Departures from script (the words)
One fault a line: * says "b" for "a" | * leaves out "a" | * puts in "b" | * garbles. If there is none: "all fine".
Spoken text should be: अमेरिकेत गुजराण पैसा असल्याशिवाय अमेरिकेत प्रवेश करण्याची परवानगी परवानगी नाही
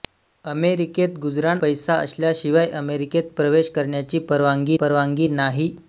all fine